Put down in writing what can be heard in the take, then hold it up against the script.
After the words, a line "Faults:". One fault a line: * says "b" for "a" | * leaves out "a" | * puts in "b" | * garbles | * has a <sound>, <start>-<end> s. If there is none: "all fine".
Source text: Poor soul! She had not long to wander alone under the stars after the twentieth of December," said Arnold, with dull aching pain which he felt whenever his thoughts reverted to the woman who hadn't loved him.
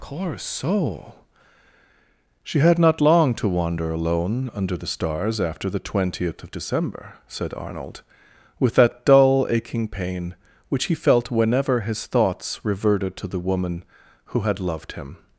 Poor soul! She had not long to wander alone under the stars after the twentieth of December," said Arnold, with that dull aching pain which he felt whenever his thoughts reverted to the woman who had loved him.
Faults:
* puts in "that"
* says "had" for "hadn't"